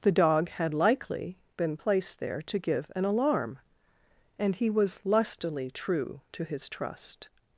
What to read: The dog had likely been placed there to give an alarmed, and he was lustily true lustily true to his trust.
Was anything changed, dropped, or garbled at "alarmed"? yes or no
yes